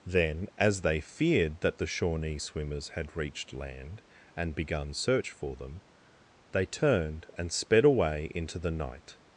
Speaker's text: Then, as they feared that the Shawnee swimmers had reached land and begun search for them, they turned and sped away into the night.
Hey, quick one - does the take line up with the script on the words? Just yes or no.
yes